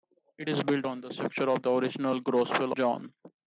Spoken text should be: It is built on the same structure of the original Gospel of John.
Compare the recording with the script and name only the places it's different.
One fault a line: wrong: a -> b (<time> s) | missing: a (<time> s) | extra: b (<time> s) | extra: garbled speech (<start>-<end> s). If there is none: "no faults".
missing: same (1.1 s)
missing: of (2.7 s)